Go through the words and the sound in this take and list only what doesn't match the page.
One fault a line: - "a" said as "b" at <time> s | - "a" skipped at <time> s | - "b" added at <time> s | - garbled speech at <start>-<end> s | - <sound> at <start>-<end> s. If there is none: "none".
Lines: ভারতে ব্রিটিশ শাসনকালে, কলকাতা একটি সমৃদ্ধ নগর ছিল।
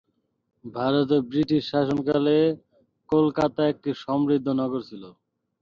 none